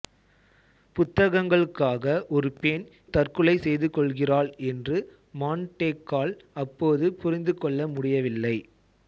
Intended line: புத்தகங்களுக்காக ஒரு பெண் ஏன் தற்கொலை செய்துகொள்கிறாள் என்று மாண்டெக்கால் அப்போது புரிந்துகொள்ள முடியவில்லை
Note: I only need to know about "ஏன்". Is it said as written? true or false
false